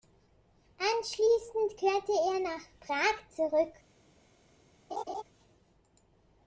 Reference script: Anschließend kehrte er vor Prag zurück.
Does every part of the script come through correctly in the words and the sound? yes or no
no